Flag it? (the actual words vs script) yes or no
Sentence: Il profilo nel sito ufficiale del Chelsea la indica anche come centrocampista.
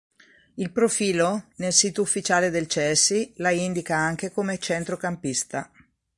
no